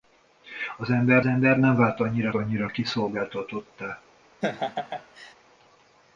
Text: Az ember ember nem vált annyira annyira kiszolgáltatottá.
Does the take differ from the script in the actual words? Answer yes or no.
no